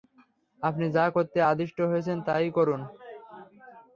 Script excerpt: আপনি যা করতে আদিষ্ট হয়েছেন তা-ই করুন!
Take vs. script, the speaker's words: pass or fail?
pass